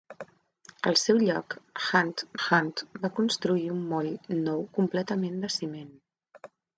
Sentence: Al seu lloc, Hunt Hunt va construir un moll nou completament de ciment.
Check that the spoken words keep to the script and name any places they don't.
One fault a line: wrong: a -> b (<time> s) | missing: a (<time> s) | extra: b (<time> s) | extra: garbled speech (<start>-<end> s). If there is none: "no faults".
no faults